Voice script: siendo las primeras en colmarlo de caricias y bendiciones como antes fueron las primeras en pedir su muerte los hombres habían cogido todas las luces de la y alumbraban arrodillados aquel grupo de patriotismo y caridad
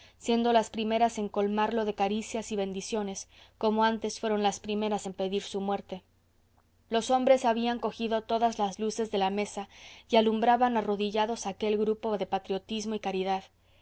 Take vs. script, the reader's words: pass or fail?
fail